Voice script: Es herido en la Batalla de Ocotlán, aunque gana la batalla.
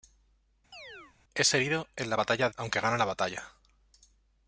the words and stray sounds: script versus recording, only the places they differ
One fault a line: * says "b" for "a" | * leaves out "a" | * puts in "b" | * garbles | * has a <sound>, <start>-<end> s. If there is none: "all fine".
* has a chirp, 0.7-1.2 s
* leaves out "de Ocotlán"